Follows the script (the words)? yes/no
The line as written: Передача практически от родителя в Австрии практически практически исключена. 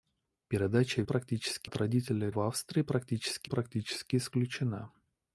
yes